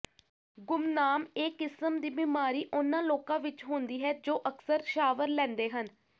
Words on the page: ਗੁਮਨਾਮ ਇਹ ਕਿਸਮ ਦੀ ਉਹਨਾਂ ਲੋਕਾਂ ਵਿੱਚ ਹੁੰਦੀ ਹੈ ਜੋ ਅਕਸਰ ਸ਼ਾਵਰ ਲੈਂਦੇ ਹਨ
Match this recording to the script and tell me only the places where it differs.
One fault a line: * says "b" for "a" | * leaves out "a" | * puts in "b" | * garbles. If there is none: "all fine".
* puts in "ਬਿਮਾਰੀ"